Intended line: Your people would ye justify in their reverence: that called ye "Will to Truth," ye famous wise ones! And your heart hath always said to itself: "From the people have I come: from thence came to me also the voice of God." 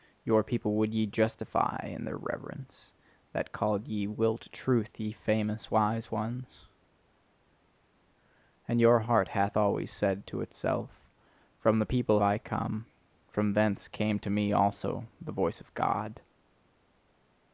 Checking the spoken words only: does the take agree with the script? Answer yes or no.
no